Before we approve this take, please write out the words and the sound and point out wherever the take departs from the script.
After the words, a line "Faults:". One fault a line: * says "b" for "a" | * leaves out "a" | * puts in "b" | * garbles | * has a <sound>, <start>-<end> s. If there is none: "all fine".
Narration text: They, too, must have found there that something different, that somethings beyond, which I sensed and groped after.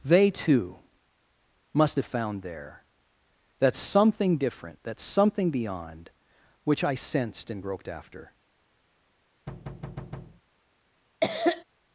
They, too, must have found there that something different, that something beyond, which I sensed and groped after.
Faults:
* says "something" for "somethings"
* has a thud, 9.5-10.4 s
* has a cough, 11.2-11.6 s